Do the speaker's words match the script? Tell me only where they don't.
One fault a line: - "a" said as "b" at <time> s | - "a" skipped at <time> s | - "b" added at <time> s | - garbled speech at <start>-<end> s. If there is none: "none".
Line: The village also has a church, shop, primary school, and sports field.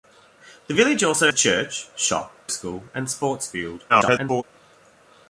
- "has" skipped at 1.3 s
- "primary" skipped at 2.3 s
- garbled speech at 3.9-4.4 s